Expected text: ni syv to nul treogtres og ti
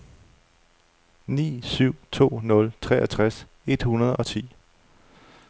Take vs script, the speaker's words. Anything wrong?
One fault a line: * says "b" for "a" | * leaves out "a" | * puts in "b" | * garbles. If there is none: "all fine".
* puts in "et hundrede"